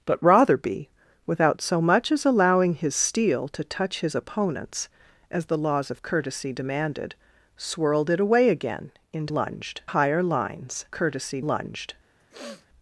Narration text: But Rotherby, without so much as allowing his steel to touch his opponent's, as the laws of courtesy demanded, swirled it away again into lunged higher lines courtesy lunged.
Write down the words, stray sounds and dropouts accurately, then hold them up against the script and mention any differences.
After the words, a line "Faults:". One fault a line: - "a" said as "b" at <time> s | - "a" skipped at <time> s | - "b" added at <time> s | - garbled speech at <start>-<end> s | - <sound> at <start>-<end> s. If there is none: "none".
But Rotherby, without so much as allowing his steel to touch his opponent's, as the laws of courtesy demanded, swirled it away again into lunged higher lines courtesy lunged.
Faults:
- sniff at 12.2-12.7 s